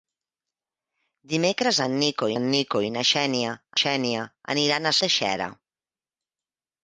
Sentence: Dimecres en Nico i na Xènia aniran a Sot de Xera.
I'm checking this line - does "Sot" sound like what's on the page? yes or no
no